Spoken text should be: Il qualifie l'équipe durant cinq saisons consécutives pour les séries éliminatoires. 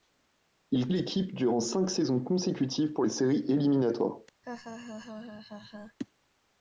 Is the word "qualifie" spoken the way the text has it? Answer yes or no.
no